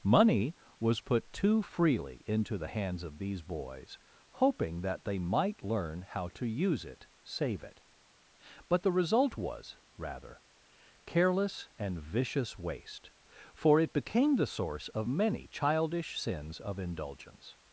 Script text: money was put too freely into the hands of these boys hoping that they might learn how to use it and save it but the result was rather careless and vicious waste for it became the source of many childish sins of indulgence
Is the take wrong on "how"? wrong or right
right